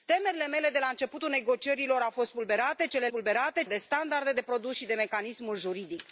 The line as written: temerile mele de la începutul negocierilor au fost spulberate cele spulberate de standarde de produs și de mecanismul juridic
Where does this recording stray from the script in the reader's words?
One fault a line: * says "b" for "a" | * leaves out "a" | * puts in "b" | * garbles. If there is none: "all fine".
all fine